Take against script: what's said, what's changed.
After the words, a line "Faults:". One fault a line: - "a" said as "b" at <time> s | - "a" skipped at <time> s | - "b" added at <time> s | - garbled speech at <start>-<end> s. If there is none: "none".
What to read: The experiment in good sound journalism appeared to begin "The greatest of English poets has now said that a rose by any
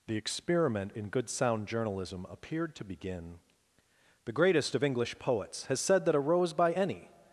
The experiment in good sound journalism appeared to begin "The greatest of English poets has said that a rose by any
Faults:
- "now" skipped at 5.8 s